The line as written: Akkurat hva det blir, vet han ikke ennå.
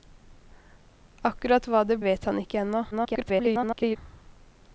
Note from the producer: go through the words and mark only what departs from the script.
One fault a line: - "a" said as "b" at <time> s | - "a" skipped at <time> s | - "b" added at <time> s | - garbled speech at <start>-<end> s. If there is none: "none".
- "blir" skipped at 2.0 s
- garbled speech at 2.9-4.0 s